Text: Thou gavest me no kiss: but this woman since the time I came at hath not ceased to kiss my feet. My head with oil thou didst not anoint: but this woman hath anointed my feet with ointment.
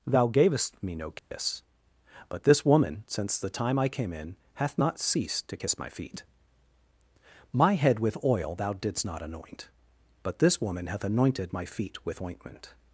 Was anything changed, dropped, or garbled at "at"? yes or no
yes